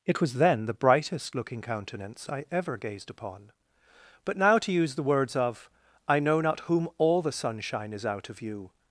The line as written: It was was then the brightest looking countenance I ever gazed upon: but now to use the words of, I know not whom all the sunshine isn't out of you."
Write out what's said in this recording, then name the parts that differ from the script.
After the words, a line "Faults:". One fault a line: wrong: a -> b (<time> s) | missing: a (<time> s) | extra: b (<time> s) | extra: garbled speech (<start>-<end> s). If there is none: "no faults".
It was then the brightest looking countenance I ever gazed upon: but now to use the words of, I know not whom all the sunshine is out of you."
Faults:
missing: was (0.3 s)
wrong: isn't -> is (7.9 s)